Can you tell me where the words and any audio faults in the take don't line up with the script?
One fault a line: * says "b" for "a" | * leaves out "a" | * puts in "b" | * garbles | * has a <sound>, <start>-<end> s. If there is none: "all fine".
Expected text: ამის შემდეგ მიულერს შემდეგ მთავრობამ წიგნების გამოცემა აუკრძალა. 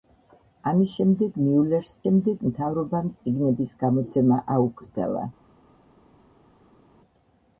all fine